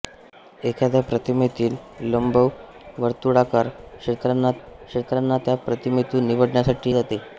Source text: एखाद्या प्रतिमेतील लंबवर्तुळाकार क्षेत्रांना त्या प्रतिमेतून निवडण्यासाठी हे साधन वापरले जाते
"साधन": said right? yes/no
no